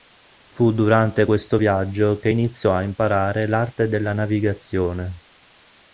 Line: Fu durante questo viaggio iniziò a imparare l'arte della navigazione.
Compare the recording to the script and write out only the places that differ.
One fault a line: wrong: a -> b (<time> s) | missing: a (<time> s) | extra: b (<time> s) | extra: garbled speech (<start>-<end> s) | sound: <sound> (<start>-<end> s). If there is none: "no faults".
extra: che (2.2 s)